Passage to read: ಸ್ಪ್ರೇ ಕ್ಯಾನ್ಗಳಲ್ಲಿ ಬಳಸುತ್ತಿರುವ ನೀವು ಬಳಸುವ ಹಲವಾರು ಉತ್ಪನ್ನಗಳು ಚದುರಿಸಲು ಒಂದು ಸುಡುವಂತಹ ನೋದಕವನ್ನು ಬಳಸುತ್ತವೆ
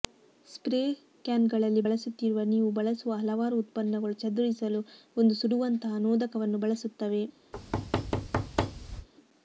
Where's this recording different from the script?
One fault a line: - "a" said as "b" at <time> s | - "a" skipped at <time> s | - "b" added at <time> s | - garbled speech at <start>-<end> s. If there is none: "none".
none